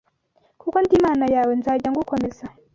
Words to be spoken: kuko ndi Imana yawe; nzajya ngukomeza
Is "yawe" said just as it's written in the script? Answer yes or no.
yes